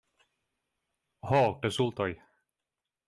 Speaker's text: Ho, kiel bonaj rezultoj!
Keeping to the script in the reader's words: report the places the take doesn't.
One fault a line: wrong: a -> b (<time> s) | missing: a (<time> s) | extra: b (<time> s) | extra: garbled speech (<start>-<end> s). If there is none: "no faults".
missing: kiel bonaj (1.4 s)